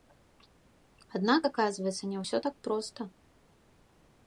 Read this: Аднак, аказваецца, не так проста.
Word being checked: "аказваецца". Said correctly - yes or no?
yes